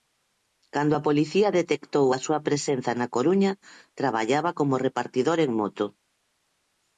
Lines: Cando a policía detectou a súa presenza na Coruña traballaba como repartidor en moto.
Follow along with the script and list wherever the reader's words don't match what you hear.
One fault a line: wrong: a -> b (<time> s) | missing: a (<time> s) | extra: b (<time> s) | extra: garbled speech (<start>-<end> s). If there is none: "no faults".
no faults